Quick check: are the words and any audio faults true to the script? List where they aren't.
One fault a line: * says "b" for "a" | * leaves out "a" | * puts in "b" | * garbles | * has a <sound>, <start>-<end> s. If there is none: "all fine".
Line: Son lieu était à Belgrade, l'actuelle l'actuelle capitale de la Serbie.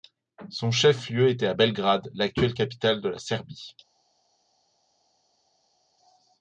* puts in "chef"
* leaves out "l'actuelle"